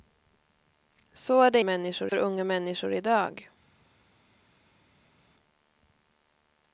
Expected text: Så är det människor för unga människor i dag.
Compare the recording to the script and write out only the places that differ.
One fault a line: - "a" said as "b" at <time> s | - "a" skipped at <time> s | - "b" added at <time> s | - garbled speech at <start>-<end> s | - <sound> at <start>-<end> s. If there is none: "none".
none